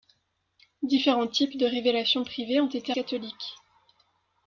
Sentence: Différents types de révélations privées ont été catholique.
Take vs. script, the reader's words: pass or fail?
pass